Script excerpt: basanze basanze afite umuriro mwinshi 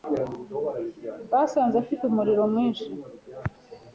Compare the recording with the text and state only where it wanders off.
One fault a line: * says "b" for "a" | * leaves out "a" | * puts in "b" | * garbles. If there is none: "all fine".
* leaves out "basanze"